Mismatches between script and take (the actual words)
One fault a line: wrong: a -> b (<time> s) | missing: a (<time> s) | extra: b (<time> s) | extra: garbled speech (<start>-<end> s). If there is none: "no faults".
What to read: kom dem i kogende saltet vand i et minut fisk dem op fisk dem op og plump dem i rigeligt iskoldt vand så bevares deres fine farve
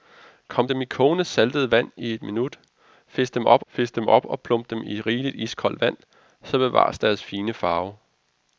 no faults